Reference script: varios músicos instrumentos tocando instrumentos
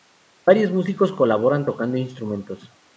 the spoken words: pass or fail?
fail